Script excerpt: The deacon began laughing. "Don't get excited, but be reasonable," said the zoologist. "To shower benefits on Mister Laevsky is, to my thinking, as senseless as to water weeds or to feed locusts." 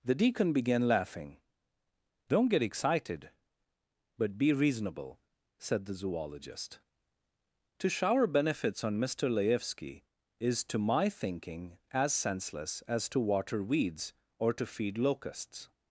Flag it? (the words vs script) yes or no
no